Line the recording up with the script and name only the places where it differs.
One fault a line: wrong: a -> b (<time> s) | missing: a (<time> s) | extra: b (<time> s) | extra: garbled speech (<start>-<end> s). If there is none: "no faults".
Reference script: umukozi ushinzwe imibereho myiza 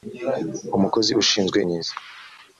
missing: imibereho (1.6 s)